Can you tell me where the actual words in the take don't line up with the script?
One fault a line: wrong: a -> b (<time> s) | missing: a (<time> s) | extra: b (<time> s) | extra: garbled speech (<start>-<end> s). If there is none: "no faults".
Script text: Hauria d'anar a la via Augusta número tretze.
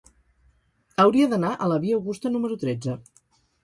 no faults